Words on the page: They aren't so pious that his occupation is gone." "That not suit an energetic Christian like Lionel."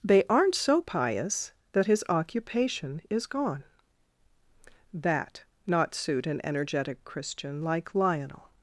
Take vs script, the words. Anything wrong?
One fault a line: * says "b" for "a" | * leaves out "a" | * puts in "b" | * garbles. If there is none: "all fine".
all fine